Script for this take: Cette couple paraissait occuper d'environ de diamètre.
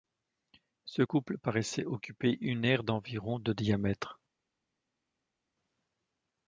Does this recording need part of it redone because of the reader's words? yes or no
yes